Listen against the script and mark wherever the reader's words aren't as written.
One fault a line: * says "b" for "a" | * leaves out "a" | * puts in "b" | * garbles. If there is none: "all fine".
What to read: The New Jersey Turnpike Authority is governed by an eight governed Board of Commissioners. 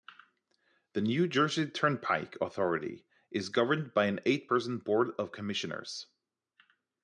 * says "person" for "governed"